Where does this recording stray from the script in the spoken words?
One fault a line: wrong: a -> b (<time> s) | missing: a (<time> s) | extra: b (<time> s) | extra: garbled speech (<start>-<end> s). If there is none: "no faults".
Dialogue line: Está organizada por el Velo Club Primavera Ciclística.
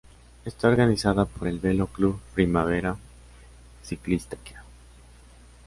no faults